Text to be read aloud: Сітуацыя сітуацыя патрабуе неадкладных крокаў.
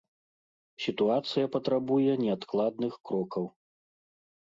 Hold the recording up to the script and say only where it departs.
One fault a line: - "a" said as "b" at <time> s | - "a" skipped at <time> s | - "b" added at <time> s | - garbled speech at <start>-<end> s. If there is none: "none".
- "сітуацыя" skipped at 1.5 s